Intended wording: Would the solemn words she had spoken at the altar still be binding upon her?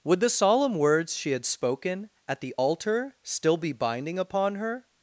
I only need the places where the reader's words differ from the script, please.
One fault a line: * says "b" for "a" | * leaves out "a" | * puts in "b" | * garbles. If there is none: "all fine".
all fine